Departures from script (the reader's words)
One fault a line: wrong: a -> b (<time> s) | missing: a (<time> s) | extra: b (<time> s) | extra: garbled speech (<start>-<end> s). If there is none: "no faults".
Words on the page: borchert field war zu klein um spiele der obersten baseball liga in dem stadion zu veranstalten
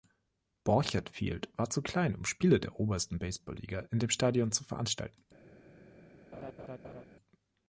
no faults